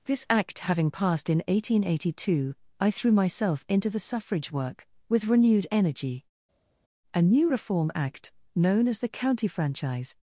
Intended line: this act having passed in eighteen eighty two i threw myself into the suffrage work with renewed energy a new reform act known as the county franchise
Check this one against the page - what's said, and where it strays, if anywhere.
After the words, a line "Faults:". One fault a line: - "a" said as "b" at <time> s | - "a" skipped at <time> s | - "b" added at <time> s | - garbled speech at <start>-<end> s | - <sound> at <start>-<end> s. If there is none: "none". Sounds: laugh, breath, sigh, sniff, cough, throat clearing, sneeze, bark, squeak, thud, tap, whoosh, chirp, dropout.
this act having passed in eighteen eighty two i threw myself into the suffrage work with renewed energy a new reform act known as the county franchise
Faults:
none